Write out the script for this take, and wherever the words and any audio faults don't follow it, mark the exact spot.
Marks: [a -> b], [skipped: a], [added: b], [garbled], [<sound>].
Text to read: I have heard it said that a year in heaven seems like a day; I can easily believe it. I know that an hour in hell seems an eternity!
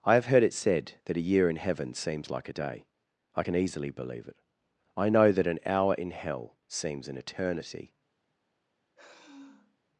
I have heard it said that a year in heaven seems like a day; I can easily believe it. I know that an hour in hell seems an eternity! [sigh]